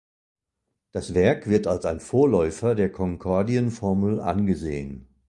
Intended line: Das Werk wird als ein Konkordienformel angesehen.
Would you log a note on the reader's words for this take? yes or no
yes